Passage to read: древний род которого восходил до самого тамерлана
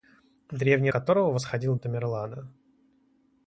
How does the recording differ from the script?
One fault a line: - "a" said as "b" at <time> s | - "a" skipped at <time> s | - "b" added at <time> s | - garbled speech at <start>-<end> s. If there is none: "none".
- "род" skipped at 0.9 s
- "до самого" skipped at 1.8 s